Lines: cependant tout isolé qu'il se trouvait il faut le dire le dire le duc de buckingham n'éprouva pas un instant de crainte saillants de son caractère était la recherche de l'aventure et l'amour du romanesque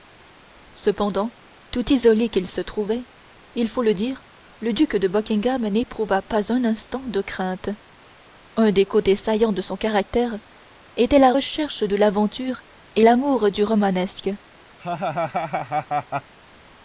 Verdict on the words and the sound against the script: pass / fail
fail